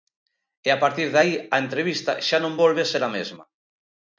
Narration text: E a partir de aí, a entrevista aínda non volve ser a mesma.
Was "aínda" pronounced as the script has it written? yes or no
no